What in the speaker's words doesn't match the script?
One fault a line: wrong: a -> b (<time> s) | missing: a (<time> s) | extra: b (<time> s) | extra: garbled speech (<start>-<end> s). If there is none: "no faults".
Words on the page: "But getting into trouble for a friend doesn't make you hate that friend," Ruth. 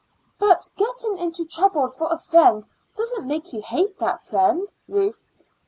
no faults